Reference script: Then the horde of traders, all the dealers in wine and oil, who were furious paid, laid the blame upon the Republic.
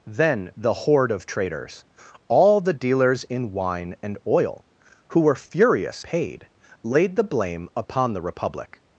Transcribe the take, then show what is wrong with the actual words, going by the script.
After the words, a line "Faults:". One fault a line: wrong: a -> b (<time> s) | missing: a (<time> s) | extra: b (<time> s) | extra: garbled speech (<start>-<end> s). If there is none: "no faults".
Then the horde of traders, all the dealers in wine and oil, who were furious paid, laid the blame upon the Republic.
Faults:
no faults